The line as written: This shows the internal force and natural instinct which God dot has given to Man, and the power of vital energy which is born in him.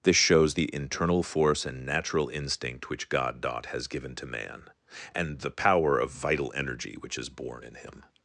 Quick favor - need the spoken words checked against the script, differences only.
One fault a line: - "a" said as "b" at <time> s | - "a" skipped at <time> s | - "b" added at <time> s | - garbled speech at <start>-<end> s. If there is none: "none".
none